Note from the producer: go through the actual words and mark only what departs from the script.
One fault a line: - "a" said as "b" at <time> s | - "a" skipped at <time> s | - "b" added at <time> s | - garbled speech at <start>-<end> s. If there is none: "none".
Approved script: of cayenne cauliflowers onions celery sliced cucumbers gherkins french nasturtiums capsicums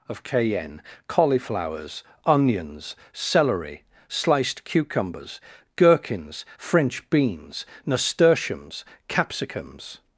- "beans" added at 7.1 s